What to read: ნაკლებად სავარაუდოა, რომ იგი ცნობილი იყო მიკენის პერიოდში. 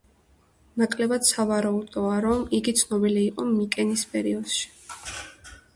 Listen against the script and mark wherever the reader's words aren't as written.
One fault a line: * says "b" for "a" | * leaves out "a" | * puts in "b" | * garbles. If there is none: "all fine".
all fine